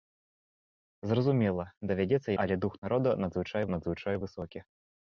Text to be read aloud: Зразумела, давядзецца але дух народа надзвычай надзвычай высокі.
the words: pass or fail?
pass